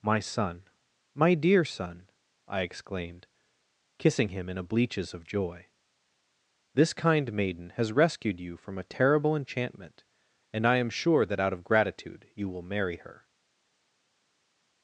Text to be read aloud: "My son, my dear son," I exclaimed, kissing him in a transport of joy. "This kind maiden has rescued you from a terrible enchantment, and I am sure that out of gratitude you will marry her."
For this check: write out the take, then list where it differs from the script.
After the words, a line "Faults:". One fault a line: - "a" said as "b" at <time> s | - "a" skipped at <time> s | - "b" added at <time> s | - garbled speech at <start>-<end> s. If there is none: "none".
"My son, my dear son," I exclaimed, kissing him in a bleaches of joy. "This kind maiden has rescued you from a terrible enchantment, and I am sure that out of gratitude you will marry her."
Faults:
- "transport" said as "bleaches" at 4.6 s